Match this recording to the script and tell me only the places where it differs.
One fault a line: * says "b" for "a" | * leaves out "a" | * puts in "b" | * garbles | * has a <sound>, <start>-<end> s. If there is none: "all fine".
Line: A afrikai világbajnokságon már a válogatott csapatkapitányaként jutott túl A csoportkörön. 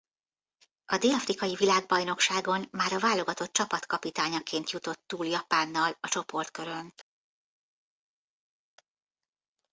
* puts in "dél"
* puts in "Japánnal"